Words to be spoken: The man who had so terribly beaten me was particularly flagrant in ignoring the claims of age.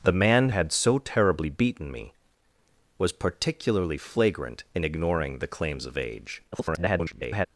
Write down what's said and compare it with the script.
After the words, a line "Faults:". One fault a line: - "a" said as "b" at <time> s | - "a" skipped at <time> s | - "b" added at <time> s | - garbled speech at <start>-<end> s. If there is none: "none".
The man had so terribly beaten me was particularly flagrant in ignoring the claims of age. [garbled]
Faults:
- "who" skipped at 0.5 s
- garbled speech at 6.5-7.5 s